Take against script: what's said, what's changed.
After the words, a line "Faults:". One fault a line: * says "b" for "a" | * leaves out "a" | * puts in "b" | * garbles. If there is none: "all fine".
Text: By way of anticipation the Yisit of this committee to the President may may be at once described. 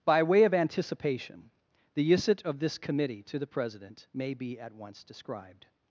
By way of anticipation the Yisit of this committee to the President may be at once described.
Faults:
* leaves out "may"